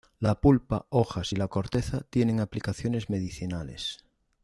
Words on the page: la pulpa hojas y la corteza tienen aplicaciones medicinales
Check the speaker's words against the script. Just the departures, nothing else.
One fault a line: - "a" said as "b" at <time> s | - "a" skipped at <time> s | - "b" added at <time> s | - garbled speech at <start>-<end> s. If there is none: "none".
none